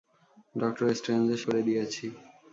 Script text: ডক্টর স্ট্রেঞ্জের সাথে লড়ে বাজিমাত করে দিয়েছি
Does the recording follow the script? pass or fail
fail